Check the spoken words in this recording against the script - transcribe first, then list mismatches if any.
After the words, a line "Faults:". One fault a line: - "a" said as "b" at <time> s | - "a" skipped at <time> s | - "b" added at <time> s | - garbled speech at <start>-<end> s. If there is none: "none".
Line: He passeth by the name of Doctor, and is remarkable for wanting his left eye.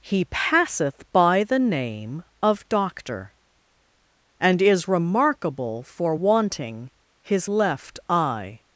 He passeth by the name of Doctor, and is remarkable for wanting his left eye.
Faults:
none